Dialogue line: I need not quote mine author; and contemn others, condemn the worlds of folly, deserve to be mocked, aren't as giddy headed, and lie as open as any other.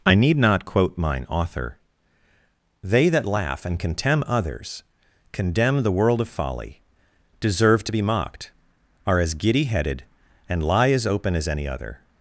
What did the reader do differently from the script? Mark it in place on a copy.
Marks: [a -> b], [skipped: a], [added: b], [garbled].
I need not quote mine author; [added: they that laugh] and contemn others, condemn the [worlds -> world] of folly, deserve to be mocked, [aren't -> are] as giddy headed, and lie as open as any other.